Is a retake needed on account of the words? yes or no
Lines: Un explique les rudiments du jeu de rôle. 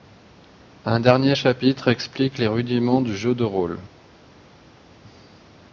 yes